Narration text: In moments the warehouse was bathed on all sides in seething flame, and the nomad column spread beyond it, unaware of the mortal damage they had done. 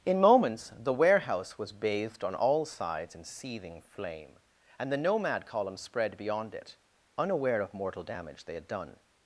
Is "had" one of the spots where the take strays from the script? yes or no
no